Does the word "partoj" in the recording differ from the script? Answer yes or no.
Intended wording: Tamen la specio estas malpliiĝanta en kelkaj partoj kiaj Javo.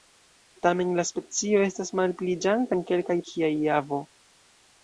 yes